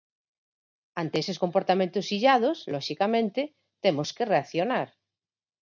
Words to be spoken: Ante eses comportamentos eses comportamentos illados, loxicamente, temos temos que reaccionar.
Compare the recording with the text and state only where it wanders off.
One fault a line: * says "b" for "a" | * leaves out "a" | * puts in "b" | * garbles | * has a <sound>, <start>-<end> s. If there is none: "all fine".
* leaves out "eses comportamentos"
* leaves out "temos"